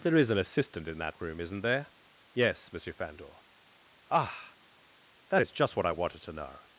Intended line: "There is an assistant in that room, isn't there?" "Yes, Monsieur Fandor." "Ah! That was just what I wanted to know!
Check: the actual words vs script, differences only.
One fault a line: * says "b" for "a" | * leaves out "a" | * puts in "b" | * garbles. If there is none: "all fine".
* says "is" for "was"